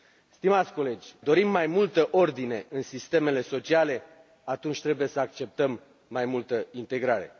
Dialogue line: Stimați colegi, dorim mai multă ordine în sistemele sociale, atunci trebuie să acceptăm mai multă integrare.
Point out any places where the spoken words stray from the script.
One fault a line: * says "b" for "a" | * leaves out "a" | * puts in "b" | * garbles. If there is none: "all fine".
all fine